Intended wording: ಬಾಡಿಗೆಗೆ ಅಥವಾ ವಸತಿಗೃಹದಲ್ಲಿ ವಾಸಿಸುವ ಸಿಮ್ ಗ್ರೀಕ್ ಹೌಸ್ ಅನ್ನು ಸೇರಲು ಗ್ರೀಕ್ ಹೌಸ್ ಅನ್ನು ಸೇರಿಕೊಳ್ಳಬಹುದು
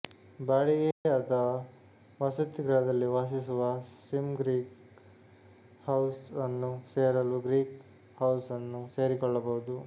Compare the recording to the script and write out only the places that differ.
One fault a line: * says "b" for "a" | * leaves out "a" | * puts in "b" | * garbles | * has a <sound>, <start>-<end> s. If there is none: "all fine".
* has a dropout, 0.9-1.1 s